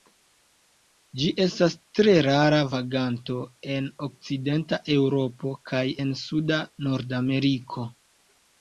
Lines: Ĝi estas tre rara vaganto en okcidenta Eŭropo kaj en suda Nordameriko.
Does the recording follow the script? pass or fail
pass